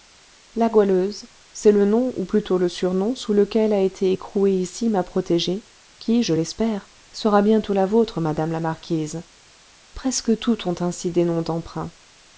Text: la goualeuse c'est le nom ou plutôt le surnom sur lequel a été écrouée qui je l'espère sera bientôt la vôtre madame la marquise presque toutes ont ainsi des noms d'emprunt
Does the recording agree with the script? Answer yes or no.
no